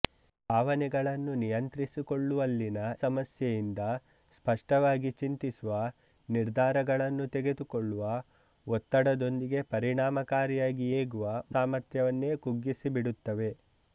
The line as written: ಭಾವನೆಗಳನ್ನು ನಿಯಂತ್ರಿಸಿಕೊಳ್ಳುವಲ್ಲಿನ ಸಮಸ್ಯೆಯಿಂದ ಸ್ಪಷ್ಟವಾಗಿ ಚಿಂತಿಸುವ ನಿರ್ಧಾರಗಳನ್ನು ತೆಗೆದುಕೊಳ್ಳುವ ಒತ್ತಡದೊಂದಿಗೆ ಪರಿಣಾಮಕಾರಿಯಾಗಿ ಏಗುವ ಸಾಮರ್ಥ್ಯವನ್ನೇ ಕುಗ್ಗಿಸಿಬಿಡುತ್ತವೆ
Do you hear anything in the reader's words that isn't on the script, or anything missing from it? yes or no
no